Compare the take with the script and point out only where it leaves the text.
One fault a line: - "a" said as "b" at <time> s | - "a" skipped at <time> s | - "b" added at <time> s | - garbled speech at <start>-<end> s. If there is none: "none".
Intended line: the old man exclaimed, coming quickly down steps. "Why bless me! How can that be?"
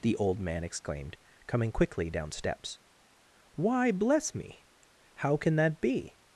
none